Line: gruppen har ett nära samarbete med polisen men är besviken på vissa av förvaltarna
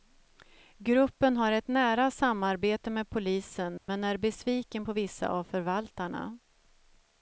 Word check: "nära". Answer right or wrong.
right